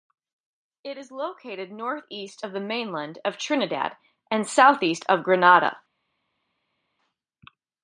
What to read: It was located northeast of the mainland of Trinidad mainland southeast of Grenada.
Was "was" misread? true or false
true